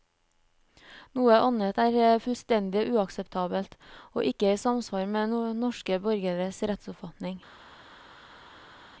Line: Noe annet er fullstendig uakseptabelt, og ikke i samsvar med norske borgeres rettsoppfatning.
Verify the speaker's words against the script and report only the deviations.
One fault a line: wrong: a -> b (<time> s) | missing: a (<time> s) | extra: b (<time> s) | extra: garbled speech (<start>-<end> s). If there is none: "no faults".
no faults